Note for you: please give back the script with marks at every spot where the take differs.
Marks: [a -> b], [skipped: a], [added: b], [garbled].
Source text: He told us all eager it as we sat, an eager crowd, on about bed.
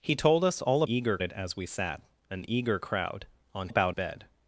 He told us all eager it as we sat, an eager crowd, on about bed.